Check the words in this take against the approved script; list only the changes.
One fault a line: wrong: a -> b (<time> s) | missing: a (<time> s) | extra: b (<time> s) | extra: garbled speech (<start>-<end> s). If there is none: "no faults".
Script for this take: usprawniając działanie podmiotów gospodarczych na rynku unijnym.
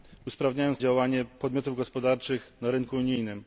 no faults